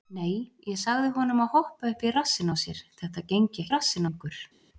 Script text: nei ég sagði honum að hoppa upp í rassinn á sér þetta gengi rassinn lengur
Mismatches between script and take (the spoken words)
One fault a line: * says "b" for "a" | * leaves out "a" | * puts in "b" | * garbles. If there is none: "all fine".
all fine